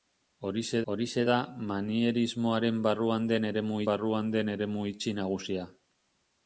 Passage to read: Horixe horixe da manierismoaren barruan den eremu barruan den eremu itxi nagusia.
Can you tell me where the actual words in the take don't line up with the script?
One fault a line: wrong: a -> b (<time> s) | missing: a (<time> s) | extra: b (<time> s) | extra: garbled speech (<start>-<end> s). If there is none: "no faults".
no faults